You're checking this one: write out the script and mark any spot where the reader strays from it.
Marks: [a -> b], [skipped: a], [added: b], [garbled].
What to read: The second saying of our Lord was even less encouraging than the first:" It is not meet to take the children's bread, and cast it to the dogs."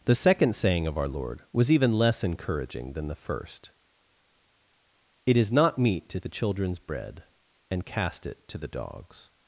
The second saying of our Lord was even less encouraging than the first:" It is not meet to [skipped: take] the children's bread, and cast it to the dogs."